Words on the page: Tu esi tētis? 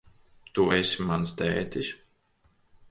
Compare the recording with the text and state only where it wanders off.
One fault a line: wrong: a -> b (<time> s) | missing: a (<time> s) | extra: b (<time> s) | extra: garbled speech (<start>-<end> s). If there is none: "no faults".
extra: mans (1.1 s)